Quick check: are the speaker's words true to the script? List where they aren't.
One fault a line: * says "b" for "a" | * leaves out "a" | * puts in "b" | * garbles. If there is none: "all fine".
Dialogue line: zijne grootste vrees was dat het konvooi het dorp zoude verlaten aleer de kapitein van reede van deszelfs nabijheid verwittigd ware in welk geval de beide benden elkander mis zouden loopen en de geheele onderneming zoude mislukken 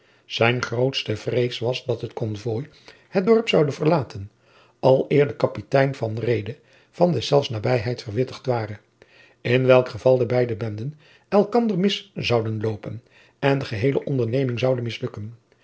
all fine